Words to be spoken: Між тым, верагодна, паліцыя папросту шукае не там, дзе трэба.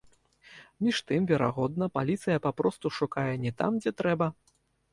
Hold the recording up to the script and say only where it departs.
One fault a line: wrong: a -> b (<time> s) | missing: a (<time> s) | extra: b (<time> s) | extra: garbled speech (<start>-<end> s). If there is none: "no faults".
no faults